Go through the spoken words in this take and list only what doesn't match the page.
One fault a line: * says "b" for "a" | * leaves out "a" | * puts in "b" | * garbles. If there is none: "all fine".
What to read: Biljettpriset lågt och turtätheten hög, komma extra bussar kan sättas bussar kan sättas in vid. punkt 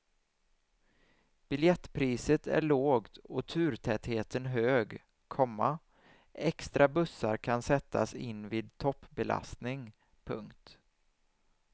* puts in "är"
* leaves out "bussar kan sättas"
* puts in "toppbelastning"